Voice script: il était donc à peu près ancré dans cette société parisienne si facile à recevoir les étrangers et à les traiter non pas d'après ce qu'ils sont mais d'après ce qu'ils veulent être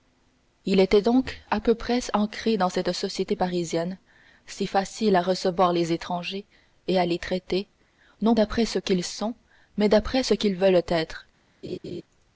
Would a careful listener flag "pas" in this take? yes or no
yes